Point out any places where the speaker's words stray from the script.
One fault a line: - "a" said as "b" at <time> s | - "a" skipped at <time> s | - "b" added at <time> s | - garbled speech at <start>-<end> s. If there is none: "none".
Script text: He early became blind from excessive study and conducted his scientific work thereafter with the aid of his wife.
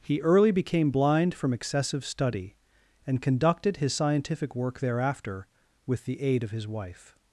none